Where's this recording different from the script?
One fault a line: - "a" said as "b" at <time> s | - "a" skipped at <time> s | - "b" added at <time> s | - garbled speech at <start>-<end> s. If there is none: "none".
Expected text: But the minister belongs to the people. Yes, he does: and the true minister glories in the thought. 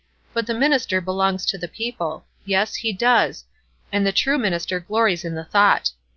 none